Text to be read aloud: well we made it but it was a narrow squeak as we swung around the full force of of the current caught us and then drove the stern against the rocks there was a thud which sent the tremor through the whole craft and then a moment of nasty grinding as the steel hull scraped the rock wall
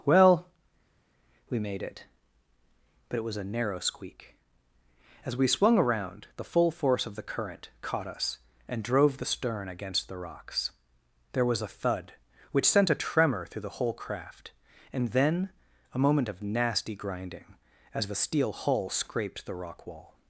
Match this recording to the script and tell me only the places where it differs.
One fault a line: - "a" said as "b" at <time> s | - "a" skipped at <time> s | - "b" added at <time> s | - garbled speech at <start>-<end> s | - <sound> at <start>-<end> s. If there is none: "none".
- "of" skipped at 7.2 s
- "then" skipped at 8.8 s
- "the" said as "a" at 12.9 s